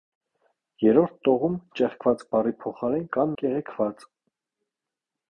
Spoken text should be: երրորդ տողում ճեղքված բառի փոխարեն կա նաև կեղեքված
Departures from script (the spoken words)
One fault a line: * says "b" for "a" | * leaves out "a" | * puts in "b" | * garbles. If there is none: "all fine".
* leaves out "նաև"